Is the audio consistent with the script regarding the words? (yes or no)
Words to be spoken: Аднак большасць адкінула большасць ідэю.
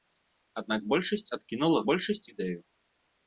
yes